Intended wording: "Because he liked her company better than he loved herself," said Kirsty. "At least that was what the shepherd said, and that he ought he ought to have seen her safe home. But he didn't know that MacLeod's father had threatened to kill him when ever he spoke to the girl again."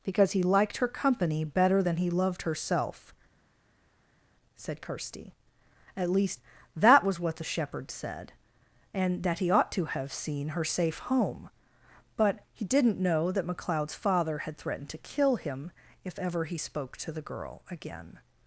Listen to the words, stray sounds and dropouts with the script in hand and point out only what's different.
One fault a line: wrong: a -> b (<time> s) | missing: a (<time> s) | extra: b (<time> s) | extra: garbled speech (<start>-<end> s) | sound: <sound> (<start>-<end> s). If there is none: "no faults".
missing: he ought (9.7 s)
wrong: when -> if (16.0 s)